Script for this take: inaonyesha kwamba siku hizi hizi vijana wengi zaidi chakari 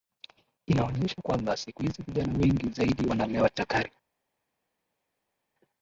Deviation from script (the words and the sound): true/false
true